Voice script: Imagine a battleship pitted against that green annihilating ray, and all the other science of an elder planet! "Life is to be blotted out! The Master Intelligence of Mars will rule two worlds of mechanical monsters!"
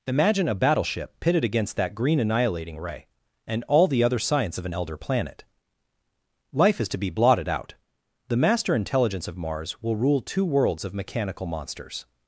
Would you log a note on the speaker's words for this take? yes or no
no